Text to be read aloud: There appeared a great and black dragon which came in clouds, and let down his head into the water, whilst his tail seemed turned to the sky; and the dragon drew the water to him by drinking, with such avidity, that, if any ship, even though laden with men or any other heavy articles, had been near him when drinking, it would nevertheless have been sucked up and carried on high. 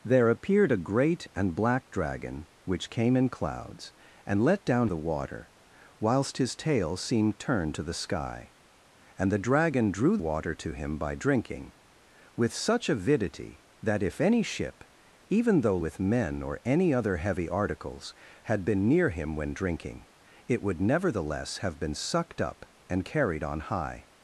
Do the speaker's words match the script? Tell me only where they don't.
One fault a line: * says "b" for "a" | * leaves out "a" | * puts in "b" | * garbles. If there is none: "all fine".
* leaves out "his head into"
* leaves out "the"
* leaves out "laden"